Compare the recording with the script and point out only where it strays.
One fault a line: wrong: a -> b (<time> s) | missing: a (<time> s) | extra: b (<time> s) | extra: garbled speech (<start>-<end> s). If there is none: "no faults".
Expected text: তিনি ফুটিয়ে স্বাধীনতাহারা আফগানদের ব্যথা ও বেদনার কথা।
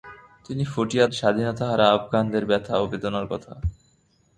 no faults